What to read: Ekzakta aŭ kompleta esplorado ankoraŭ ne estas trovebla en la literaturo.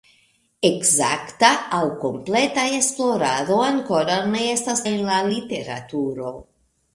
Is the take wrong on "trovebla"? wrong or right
wrong